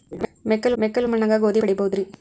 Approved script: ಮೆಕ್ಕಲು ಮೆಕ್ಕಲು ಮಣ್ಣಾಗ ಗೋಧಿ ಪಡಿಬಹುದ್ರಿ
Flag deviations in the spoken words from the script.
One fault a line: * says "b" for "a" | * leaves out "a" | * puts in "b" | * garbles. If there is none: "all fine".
all fine